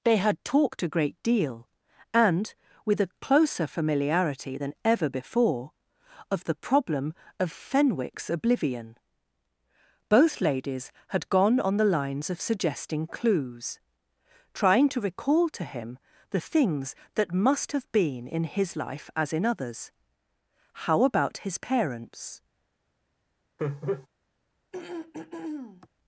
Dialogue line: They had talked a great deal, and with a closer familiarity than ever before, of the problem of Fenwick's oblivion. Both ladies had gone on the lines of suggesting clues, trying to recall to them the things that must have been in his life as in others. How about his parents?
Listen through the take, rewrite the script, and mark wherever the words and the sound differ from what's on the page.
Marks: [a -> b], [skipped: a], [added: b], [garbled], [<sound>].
They had talked a great deal, and with a closer familiarity than ever before, of the problem of Fenwick's oblivion. Both ladies had gone on the lines of suggesting clues, trying to recall to [them -> him] the things that must have been in his life as in others. How about his parents? [laugh] [throat clearing]